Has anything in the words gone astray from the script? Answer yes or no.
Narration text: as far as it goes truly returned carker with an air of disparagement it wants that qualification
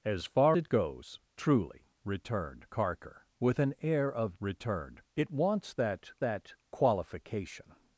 yes